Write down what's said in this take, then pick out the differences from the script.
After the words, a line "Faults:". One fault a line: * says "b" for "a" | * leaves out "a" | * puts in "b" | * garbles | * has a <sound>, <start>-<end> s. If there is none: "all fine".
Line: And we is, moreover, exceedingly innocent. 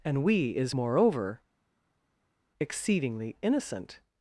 And we is, moreover, exceedingly innocent.
Faults:
all fine